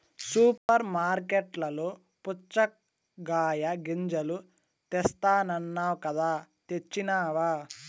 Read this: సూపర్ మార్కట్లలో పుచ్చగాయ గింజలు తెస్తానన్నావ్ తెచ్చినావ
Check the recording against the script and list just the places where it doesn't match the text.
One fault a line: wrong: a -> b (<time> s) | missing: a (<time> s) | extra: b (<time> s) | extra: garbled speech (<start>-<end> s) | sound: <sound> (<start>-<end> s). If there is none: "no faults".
sound: dropout (0.6-0.7 s)
extra: కదా (6.1 s)